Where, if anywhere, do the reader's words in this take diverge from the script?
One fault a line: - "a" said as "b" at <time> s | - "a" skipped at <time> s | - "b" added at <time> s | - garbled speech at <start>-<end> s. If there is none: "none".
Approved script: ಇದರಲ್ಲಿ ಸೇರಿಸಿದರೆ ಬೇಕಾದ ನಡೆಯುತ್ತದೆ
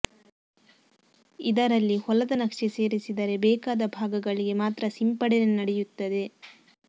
- "ಹೊಲದ ನಕ್ಷೆ" added at 2.0 s
- "ಭಾಗಗಳಿಗೆ ಮಾತ್ರ ಸಿಂಪಡಣೆ" added at 3.9 s